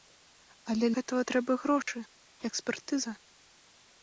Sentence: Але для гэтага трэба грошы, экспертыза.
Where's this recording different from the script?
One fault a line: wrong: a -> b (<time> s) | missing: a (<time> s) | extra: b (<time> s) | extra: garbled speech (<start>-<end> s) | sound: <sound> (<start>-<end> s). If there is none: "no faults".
missing: для (0.9 s)
sound: dropout (1.8-1.9 s)